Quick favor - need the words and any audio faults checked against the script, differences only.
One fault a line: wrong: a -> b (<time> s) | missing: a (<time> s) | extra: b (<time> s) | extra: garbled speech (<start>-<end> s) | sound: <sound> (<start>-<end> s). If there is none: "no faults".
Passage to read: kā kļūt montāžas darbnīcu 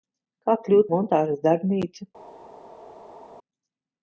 no faults